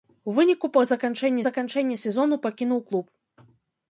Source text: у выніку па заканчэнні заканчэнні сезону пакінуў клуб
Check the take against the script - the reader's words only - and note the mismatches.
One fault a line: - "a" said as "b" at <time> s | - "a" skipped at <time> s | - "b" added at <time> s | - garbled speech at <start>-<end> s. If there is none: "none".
none